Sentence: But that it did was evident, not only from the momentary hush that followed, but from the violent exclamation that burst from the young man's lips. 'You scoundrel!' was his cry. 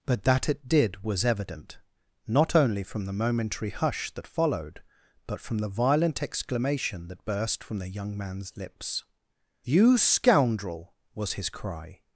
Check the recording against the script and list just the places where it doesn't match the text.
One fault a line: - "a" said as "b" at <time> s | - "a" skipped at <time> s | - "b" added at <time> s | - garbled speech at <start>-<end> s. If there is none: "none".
none